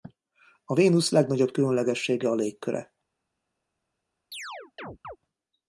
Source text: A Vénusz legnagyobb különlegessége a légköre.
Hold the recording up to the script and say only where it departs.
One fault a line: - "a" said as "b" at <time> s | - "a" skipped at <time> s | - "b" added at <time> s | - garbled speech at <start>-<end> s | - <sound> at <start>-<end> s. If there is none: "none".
- chirp at 4.3-5.2 s